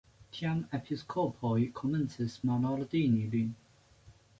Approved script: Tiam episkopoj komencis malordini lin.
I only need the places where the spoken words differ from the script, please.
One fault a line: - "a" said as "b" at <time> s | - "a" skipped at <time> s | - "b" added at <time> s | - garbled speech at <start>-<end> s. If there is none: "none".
none